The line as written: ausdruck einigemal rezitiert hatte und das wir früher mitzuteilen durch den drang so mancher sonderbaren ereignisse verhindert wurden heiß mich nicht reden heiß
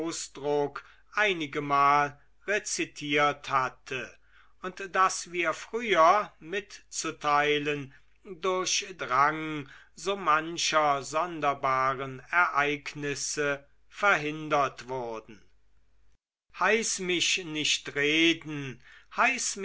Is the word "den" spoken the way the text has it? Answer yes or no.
no